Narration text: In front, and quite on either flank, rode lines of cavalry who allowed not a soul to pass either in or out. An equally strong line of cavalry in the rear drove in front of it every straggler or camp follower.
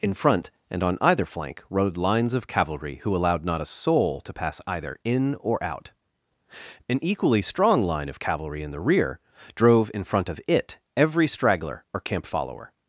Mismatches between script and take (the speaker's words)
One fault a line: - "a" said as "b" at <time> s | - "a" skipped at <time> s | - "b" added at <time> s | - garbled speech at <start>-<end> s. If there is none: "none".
- "quite" skipped at 0.8 s